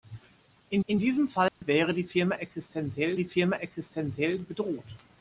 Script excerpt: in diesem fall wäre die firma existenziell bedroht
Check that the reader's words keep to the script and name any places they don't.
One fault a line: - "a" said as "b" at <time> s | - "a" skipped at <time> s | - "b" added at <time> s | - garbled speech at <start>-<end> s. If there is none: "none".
- "in" added at 0.9 s
- "die firma existenziell" added at 3.1 s